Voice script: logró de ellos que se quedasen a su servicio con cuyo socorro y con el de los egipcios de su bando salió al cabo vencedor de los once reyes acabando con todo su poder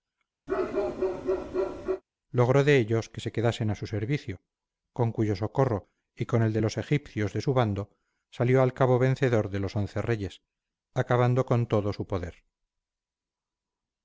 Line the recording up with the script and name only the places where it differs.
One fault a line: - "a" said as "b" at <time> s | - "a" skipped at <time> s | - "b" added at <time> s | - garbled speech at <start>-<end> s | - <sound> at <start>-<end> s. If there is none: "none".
- bark at 0.5-2.0 s